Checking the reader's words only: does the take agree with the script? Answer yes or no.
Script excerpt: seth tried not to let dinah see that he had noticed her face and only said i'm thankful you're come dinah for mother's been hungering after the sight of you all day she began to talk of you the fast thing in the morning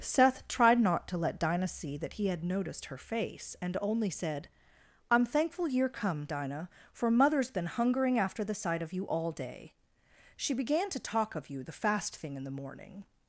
yes